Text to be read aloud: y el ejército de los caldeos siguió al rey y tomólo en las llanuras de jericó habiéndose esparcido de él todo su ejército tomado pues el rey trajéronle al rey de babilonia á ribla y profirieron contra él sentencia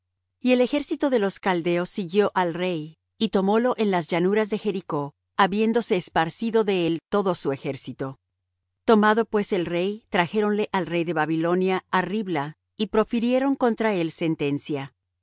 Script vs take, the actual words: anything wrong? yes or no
no